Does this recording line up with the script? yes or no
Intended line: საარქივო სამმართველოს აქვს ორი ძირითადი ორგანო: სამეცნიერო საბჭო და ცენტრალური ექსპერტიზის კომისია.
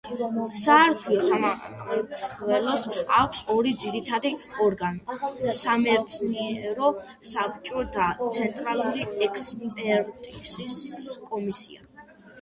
yes